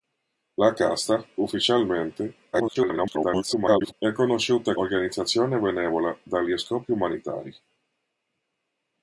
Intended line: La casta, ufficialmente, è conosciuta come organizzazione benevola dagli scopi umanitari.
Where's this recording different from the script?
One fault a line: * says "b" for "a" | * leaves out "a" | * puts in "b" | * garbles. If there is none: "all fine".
* garbles
* leaves out "come"